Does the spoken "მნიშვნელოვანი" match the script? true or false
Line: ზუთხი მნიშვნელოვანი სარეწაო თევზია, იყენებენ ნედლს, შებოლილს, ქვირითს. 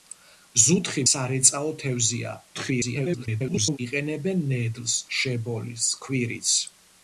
false